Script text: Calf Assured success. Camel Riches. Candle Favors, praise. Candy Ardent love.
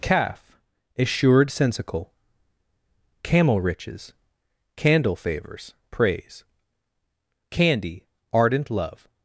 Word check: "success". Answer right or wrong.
wrong